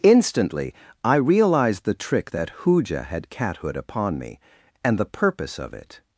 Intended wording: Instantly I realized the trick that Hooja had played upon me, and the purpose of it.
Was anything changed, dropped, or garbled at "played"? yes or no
yes